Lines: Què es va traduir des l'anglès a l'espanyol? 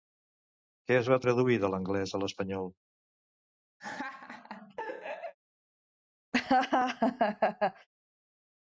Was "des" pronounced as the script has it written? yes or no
no